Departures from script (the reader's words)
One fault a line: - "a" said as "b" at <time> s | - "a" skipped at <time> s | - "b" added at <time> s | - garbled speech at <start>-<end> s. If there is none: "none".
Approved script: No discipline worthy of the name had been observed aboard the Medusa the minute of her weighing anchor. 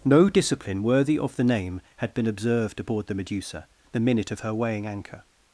none